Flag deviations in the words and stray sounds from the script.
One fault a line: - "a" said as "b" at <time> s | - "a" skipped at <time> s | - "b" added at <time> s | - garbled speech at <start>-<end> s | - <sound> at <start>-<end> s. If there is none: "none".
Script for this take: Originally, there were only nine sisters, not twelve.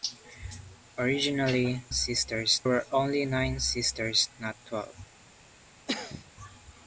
- "there" said as "sisters" at 1.9 s
- cough at 5.9-6.3 s